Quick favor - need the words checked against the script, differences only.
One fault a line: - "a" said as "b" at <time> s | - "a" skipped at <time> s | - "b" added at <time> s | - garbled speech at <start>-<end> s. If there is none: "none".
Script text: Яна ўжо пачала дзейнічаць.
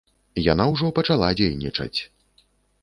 none